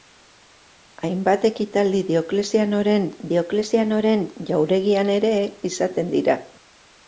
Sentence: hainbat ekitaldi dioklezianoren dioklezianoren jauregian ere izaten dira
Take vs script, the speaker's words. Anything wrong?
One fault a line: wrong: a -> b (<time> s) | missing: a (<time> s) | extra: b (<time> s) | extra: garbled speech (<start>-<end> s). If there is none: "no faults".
no faults